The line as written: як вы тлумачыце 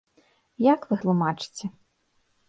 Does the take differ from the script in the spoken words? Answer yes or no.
no